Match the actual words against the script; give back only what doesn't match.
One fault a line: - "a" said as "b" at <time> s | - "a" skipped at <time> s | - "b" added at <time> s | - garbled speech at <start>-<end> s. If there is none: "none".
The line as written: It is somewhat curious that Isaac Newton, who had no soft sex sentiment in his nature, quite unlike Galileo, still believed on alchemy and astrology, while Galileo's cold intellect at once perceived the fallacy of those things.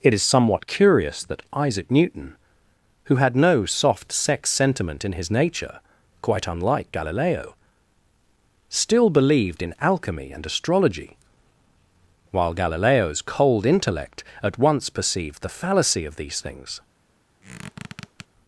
- "on" said as "in" at 9.6 s
- "those" said as "these" at 16.2 s